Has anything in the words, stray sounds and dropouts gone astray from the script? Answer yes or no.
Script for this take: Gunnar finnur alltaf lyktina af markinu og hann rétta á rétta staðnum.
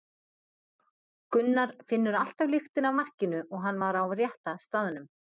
yes